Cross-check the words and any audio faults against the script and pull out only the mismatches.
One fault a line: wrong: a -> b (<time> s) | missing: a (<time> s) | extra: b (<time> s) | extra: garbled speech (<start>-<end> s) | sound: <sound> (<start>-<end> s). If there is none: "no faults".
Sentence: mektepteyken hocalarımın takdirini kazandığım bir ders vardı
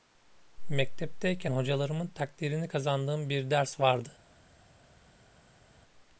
no faults